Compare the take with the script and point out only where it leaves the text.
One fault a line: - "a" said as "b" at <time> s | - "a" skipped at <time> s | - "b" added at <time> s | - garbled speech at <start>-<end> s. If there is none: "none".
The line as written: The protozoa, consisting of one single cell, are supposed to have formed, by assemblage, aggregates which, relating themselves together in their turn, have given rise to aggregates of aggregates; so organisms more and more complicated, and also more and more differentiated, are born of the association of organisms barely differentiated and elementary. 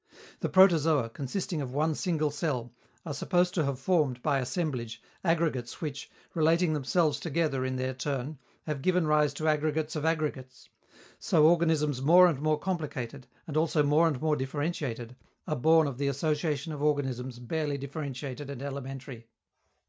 none